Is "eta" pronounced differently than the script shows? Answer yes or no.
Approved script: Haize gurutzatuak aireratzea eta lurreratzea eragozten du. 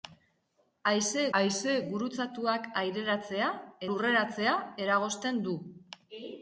yes